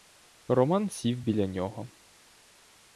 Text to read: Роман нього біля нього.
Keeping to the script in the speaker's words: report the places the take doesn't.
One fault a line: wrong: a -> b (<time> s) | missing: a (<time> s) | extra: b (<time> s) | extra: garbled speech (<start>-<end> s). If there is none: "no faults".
wrong: нього -> сів (0.9 s)